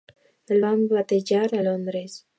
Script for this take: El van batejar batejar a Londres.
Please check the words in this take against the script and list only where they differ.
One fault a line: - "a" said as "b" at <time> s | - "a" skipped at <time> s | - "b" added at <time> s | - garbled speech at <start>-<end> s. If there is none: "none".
- "batejar" skipped at 1.5 s